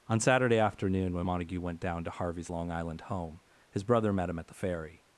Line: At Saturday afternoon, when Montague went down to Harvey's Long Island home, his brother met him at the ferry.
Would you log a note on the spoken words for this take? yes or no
yes